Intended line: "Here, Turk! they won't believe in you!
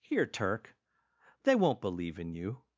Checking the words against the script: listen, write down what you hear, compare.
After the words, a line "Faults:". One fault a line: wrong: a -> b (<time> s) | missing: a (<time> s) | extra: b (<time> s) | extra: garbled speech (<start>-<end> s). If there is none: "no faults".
"Here, Turk! they won't believe in you!
Faults:
no faults